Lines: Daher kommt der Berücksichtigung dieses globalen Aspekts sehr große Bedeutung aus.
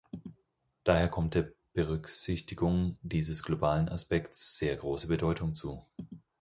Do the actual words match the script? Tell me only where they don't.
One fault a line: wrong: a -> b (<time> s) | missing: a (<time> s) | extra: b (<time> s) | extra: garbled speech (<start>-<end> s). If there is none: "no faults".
wrong: aus -> zu (5.5 s)